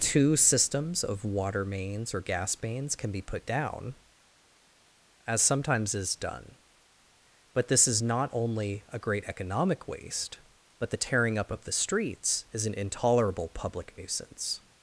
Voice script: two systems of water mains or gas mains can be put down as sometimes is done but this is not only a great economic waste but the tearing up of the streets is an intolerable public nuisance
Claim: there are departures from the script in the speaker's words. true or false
false